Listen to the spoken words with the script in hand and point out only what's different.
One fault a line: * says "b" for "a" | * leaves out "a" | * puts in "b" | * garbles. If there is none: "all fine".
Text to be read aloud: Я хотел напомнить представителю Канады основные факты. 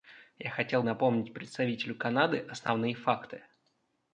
all fine